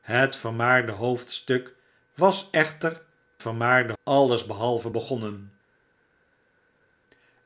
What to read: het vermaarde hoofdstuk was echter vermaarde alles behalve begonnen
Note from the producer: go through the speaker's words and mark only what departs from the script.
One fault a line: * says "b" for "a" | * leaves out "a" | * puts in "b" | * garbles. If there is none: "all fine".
all fine